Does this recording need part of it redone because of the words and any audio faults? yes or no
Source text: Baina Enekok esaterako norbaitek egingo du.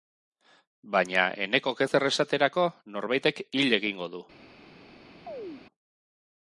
yes